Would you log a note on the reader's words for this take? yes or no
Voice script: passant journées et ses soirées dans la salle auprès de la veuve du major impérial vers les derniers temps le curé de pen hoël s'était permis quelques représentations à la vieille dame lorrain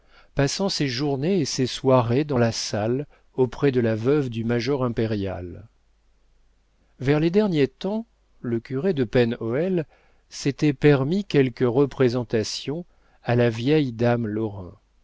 yes